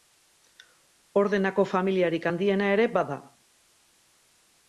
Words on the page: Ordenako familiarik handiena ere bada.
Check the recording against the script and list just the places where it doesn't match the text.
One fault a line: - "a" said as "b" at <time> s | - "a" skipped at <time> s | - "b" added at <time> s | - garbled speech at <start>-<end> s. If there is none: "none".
none